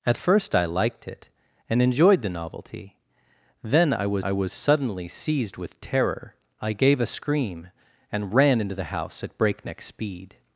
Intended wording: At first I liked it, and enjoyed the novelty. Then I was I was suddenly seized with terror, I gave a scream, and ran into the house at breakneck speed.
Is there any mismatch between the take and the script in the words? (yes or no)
no